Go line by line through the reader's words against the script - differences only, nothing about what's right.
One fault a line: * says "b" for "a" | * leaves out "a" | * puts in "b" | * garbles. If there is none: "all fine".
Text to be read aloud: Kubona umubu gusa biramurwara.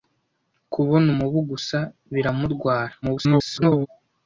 * garbles